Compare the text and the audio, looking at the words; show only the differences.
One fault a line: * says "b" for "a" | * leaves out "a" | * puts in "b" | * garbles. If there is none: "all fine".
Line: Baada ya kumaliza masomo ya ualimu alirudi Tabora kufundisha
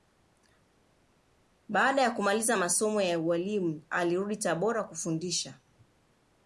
all fine